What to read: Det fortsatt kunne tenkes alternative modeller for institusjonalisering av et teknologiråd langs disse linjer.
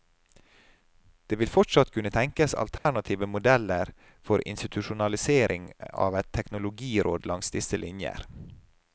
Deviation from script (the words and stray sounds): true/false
true